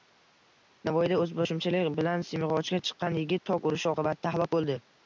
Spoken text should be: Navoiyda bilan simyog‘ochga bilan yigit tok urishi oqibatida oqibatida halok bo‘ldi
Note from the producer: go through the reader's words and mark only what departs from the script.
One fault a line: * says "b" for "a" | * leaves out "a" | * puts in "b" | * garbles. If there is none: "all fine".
* puts in "o‘zboshimchalik"
* says "chiqqan" for "bilan"
* leaves out "oqibatida"